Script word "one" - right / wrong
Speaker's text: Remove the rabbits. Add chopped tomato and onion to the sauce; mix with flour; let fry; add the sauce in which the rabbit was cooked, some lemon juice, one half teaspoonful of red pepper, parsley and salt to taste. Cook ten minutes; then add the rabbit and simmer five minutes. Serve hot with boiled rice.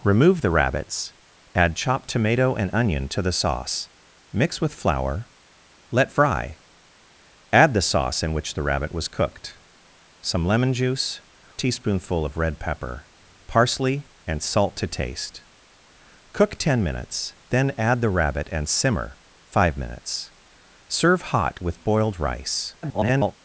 wrong